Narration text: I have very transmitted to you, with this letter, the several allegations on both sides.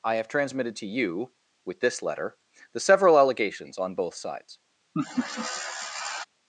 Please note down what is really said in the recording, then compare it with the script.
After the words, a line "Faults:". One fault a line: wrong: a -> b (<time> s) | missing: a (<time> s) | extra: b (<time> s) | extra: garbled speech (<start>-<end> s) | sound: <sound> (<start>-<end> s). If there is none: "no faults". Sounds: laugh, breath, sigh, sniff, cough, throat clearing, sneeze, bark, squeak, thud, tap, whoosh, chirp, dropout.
I have transmitted to you, with this letter, the several allegations on both sides.
Faults:
missing: very (0.3 s)
sound: laugh (4.9-6.3 s)